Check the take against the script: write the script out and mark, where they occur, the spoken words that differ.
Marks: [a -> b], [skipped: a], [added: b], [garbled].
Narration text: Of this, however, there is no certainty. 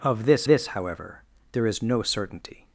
Of this, [added: this] however, there is no certainty.